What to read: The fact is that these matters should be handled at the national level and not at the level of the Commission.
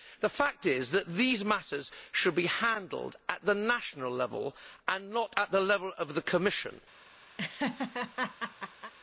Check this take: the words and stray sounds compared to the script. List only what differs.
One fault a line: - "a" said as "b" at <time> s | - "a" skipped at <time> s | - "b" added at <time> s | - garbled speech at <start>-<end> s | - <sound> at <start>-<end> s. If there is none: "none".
- laugh at 7.4-8.9 s